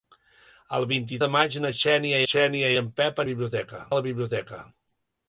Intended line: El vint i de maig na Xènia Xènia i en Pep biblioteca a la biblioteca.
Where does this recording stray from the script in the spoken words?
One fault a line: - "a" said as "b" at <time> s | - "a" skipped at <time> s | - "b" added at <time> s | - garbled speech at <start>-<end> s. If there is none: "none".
none